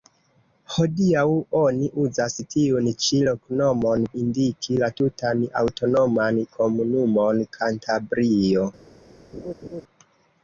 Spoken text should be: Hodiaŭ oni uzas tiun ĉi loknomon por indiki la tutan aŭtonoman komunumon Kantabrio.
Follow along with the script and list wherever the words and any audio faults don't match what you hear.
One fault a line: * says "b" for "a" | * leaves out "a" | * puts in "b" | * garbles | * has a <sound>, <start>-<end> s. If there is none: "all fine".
* leaves out "por"
* has a laugh, 9.3-9.8 s